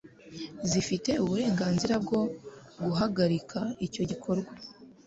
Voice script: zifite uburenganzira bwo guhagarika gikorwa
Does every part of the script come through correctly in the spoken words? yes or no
no